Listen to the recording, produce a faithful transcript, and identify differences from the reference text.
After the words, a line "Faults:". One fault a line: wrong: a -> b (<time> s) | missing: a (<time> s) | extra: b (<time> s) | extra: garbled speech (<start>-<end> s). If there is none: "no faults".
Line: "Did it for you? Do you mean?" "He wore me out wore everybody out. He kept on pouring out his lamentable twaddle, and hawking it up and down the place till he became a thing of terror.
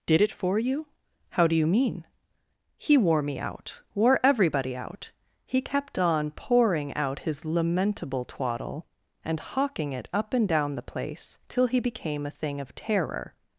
"Did it for you? How do you mean?" "He wore me out wore everybody out. He kept on pouring out his lamentable twaddle, and hawking it up and down the place till he became a thing of terror.
Faults:
extra: How (1.3 s)